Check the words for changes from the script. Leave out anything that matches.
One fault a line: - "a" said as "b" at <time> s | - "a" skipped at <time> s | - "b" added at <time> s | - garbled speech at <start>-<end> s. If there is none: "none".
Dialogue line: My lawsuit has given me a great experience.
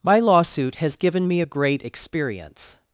none